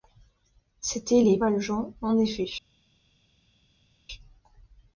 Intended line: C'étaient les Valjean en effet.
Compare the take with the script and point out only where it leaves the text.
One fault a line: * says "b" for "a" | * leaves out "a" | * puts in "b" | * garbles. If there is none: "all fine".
all fine